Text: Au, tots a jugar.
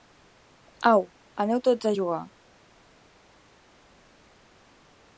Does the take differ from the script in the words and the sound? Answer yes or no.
yes